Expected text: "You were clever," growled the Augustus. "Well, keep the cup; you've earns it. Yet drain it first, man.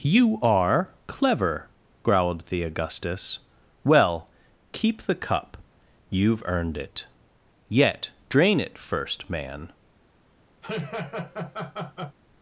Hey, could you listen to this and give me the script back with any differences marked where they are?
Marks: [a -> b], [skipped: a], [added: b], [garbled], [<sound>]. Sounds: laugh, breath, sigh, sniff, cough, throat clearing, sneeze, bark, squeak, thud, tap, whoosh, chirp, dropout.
"You [were -> are] clever," growled the Augustus. "Well, keep the cup; you've [earns -> earned] it. Yet drain it first, man. [laugh]